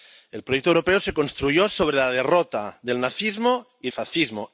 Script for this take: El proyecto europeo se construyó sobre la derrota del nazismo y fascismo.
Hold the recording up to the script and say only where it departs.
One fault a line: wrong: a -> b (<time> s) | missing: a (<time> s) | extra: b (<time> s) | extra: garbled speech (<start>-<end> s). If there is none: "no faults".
no faults